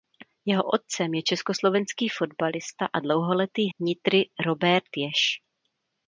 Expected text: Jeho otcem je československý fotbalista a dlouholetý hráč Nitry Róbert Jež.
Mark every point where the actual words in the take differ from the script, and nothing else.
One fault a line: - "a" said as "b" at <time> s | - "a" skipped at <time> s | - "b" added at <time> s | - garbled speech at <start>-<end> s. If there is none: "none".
- "hráč" skipped at 3.7 s